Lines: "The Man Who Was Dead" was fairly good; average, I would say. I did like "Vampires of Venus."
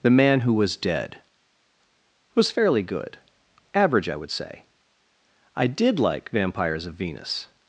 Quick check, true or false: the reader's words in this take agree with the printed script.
true